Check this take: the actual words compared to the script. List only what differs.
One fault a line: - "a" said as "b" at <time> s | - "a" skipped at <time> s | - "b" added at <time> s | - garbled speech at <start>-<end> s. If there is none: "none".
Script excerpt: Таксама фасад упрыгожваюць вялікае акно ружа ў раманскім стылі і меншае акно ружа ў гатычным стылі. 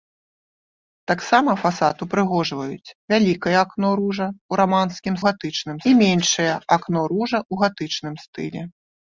- "стылі" said as "гатычным" at 5.3 s